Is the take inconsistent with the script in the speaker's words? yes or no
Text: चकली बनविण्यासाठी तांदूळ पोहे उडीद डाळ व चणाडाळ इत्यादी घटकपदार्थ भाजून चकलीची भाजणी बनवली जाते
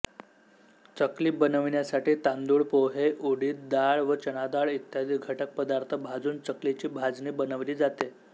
no